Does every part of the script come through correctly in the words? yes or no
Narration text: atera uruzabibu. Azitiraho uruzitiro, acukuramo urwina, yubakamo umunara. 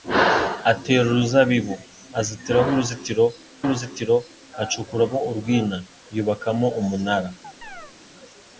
no